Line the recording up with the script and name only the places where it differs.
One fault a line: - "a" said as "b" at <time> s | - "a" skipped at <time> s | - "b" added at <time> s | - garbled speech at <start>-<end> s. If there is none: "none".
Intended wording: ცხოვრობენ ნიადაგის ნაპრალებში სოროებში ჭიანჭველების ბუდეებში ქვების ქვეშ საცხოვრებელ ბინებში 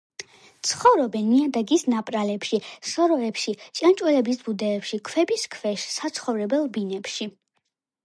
none